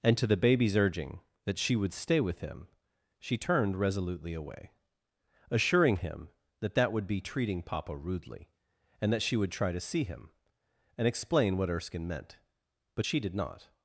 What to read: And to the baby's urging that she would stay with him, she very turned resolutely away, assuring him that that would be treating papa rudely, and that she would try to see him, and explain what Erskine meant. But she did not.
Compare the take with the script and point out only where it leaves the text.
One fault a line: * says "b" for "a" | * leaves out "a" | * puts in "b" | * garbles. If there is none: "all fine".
* leaves out "very"